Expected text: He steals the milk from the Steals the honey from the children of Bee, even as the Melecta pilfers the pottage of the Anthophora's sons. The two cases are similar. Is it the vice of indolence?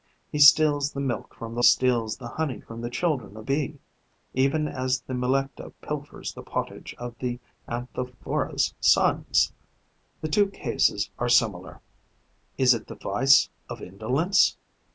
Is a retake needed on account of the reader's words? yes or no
no